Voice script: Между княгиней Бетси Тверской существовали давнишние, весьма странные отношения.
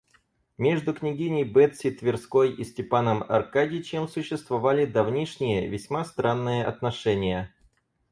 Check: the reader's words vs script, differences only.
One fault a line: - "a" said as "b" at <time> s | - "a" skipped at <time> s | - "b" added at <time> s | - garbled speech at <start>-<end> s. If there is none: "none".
- "и Степаном Аркадьичем" added at 2.5 s